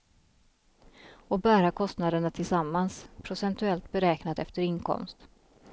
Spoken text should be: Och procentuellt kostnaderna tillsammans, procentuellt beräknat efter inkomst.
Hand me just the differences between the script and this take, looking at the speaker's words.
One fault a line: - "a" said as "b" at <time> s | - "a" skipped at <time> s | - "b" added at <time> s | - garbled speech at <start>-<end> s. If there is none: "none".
- "procentuellt" said as "bära" at 1.4 s